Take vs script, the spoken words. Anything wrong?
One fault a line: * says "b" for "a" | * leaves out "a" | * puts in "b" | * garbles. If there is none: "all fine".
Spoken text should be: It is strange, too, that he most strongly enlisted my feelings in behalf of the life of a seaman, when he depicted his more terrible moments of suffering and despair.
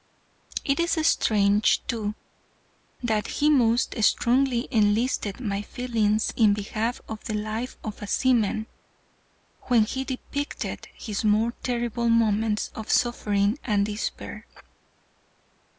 all fine